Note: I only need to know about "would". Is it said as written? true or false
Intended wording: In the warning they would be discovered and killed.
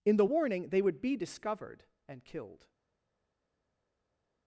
true